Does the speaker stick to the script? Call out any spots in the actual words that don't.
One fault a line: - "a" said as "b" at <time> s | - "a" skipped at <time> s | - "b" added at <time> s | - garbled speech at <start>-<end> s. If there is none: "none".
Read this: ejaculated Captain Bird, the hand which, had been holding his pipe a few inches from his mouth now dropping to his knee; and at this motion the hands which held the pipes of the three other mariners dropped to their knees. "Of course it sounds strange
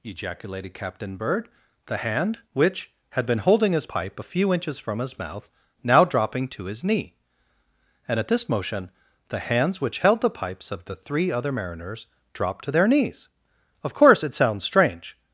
none